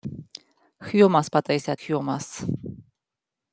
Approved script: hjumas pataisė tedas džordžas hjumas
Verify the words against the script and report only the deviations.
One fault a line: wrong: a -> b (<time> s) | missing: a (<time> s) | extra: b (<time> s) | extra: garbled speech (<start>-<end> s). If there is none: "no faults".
missing: tedas džordžas (1.8 s)